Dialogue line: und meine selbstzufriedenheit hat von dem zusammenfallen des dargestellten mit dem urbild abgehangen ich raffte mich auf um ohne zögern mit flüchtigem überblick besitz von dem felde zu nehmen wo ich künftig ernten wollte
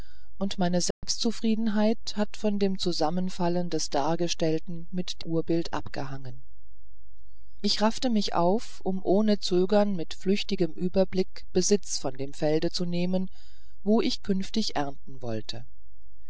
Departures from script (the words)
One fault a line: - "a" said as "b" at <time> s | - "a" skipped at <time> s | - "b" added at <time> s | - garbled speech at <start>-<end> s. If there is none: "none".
- "dem" skipped at 5.2 s